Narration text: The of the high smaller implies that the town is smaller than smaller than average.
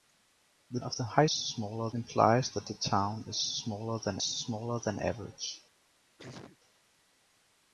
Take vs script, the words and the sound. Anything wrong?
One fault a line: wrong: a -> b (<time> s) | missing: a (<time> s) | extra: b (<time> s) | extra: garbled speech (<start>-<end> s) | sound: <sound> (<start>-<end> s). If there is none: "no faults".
sound: sneeze (6.2-6.6 s)